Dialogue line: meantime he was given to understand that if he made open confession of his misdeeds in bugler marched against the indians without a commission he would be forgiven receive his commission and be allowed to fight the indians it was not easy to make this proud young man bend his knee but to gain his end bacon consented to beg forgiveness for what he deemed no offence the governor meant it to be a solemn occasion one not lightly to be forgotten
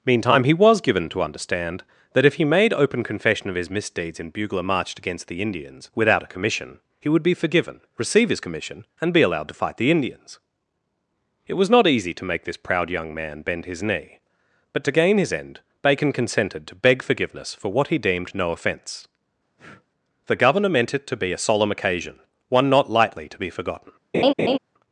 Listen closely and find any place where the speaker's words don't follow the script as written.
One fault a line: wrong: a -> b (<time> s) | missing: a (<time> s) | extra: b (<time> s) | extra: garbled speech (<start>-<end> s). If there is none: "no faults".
no faults